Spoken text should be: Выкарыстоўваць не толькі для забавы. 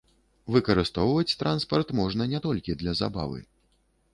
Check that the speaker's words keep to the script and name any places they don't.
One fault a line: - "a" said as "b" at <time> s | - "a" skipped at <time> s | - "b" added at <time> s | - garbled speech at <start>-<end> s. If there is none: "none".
- "транспарт можна" added at 1.4 s